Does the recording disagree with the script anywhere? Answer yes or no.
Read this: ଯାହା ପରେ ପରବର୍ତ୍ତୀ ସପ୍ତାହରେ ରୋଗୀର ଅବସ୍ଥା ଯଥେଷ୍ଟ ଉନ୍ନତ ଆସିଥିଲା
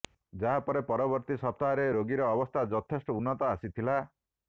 no